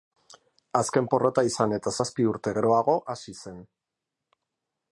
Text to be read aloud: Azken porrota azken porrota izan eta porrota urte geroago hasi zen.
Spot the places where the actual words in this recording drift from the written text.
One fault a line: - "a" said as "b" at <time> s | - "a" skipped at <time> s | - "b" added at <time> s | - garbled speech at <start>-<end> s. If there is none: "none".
- "azken porrota" skipped at 1.4 s
- "porrota" said as "zazpi" at 2.0 s